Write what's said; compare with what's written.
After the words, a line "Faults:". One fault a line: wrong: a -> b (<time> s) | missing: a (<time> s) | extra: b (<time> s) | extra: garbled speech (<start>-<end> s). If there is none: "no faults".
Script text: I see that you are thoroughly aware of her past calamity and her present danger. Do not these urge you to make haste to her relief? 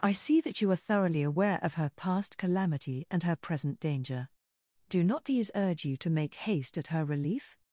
I see that you are thoroughly aware of her past calamity and her present danger. Do not these urge you to make haste at her relief?
Faults:
wrong: to -> at (6.8 s)